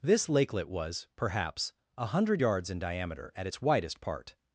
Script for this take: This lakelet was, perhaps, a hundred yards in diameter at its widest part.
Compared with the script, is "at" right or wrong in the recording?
right